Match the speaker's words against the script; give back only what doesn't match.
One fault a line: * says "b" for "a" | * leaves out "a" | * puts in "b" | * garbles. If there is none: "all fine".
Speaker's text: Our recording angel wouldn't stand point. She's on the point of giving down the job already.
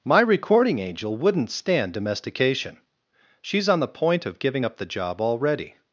* says "My" for "Our"
* says "domestication" for "point"
* says "up" for "down"